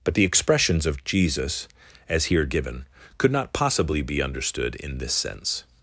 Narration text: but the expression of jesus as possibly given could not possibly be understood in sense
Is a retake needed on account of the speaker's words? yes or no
yes